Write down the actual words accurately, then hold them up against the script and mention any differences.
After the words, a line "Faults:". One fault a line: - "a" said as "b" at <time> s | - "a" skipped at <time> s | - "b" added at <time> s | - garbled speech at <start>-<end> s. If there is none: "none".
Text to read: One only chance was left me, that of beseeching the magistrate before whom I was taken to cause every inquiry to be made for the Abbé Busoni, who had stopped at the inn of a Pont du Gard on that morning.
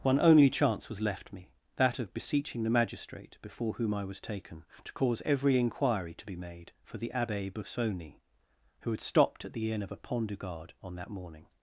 One only chance was left me, that of beseeching the magistrate before whom I was taken to cause every inquiry to be made for the Abbé Busoni, who had stopped at the inn of a Pont du Gard on that morning.
Faults:
none